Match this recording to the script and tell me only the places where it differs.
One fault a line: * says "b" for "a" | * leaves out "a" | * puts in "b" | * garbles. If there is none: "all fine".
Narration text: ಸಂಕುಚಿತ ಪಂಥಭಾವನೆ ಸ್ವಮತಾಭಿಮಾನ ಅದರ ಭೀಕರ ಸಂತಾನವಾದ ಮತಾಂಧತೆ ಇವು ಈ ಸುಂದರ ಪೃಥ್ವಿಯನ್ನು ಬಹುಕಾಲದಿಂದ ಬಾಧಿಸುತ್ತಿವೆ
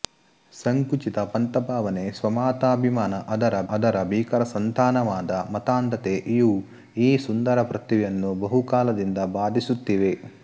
* puts in "ಅದರ"